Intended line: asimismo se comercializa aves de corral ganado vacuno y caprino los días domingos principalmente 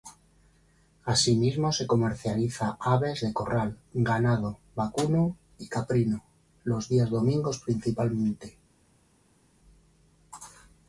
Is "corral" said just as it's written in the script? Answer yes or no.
yes